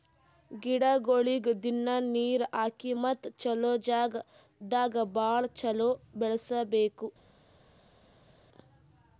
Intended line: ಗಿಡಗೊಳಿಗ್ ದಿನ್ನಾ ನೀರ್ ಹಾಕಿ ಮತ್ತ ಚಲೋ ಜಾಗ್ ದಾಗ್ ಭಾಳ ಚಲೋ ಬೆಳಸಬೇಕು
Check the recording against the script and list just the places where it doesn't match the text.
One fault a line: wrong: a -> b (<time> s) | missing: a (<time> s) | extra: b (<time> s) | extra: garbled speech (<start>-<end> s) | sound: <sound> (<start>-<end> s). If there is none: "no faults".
no faults